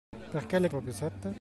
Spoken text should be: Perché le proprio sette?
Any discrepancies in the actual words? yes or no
no